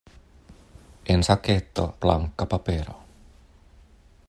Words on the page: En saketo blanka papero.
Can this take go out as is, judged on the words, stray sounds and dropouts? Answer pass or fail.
pass